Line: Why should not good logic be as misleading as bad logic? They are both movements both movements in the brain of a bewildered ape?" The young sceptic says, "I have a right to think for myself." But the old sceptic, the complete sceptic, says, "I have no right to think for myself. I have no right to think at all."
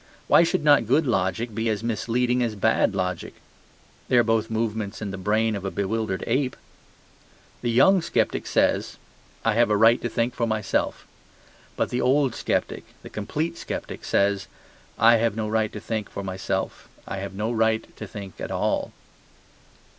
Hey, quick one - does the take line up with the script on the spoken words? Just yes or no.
no